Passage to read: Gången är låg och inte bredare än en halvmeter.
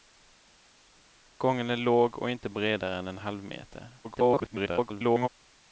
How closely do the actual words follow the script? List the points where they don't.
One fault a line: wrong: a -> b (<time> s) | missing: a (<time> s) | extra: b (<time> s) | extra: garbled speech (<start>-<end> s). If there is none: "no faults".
extra: garbled speech (4.0-5.3 s)